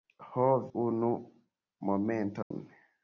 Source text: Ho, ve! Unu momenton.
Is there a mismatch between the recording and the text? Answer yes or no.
yes